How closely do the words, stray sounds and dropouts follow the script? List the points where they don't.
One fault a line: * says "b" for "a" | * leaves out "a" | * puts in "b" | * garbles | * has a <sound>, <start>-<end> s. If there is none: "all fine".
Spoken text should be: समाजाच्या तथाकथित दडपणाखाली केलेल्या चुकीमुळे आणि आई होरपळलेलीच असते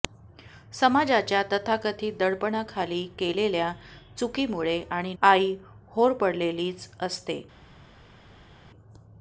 all fine